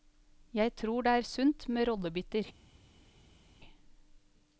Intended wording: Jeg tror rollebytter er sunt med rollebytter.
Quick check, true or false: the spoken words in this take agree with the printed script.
false